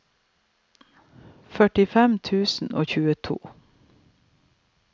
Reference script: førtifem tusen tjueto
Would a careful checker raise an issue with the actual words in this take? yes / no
yes